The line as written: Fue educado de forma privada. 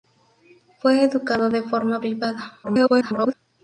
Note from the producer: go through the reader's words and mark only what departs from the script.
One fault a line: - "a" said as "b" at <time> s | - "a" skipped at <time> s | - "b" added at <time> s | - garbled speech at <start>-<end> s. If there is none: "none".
- garbled speech at 2.6-3.3 s